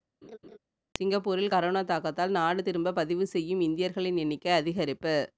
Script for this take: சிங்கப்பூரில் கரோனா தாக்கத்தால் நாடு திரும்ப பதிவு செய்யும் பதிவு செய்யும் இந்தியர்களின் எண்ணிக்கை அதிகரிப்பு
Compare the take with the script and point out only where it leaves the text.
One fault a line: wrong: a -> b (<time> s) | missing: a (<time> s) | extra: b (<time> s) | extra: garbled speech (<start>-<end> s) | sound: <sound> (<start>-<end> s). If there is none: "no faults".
sound: laugh (0.2-0.6 s)
missing: பதிவு செய்யும் (3.6 s)